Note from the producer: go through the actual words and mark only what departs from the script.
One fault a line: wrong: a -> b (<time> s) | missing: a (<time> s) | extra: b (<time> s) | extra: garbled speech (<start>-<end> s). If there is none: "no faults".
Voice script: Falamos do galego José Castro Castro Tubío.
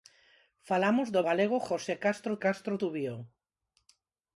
no faults